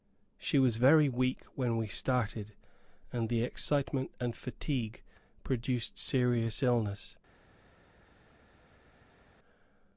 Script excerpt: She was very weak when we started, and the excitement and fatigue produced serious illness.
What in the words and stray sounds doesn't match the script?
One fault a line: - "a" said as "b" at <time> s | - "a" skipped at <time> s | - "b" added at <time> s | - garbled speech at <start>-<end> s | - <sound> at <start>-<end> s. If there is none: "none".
none